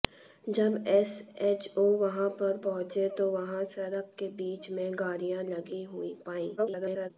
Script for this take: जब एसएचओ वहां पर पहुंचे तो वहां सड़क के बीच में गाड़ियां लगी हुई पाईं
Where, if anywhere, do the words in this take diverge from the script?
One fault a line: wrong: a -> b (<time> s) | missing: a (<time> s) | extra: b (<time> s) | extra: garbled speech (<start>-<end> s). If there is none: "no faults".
extra: garbled speech (6.6-7.1 s)